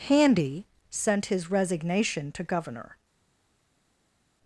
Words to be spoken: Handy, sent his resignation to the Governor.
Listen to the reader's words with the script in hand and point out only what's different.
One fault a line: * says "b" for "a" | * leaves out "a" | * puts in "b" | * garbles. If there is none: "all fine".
* leaves out "the"